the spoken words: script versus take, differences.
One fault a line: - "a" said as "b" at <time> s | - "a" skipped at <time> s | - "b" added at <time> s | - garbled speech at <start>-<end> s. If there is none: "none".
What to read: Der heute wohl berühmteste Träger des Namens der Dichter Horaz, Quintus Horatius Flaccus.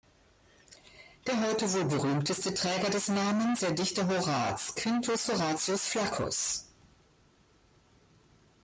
none